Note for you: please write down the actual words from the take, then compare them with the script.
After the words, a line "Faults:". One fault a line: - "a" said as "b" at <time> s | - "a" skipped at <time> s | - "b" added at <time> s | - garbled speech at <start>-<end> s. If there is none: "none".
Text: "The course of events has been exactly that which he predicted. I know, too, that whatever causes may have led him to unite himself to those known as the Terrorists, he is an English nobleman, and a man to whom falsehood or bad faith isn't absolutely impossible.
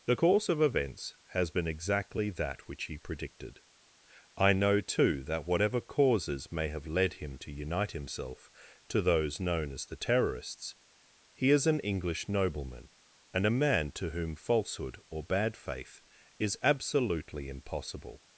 "The course of events has been exactly that which he predicted. I know, too, that whatever causes may have led him to unite himself to those known as the Terrorists, he is an English nobleman, and a man to whom falsehood or bad faith is absolutely impossible.
Faults:
- "isn't" said as "is" at 16.4 s